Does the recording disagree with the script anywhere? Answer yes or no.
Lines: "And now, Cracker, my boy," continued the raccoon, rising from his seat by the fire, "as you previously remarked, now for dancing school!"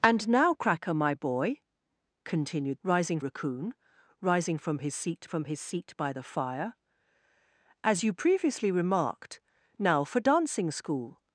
yes